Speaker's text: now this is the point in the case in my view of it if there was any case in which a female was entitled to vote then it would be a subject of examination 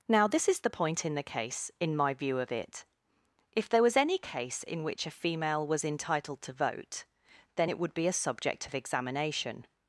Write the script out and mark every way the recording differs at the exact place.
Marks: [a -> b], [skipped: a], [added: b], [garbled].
now this is the point in the case in my view of it if there was any case in which a female was entitled to vote then it would be a subject of examination